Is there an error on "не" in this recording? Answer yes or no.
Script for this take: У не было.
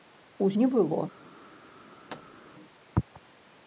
no